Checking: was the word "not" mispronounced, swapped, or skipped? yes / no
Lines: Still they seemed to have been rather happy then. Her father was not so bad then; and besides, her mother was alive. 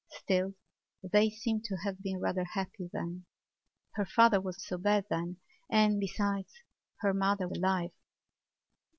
yes